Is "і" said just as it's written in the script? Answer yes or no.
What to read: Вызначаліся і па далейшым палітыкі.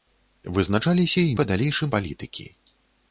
yes